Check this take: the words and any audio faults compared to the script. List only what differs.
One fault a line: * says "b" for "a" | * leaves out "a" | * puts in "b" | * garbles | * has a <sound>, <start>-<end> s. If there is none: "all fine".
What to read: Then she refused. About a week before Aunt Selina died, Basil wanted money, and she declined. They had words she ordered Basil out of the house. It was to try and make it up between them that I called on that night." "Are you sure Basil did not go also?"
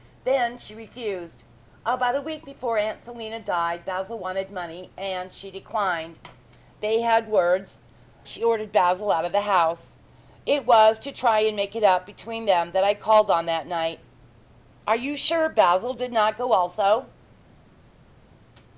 all fine